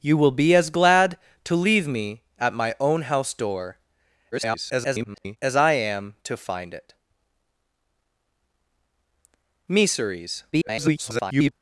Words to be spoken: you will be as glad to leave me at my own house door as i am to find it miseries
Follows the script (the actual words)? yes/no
no